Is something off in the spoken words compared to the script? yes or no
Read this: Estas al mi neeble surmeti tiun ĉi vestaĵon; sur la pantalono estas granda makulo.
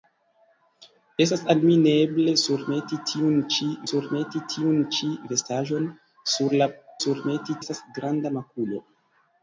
yes